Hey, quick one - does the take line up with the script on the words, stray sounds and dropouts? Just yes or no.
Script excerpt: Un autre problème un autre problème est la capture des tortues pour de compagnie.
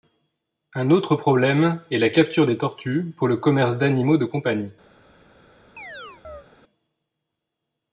no